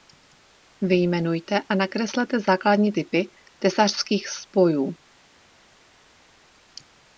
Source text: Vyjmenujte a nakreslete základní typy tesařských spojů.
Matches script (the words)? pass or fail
pass